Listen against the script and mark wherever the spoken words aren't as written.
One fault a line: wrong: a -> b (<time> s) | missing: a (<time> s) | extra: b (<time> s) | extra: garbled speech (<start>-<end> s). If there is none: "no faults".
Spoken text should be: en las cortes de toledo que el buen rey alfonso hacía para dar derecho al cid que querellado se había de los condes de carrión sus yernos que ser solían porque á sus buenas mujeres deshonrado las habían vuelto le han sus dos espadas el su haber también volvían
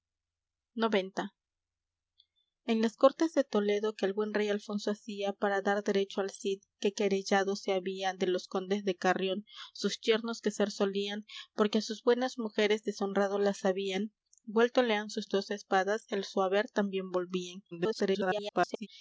extra: garbled speech (17.7-18.9 s)